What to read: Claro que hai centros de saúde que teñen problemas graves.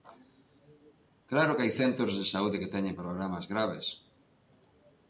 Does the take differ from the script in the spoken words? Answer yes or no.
no